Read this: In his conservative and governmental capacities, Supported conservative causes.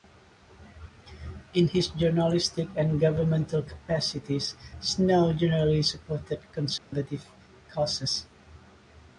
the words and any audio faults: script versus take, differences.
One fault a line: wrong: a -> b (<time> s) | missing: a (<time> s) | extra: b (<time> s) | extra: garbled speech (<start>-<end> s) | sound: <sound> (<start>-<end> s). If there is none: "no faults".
wrong: conservative -> journalistic (1.9 s)
extra: Snow generally (4.8 s)
sound: dropout (6.8-6.9 s)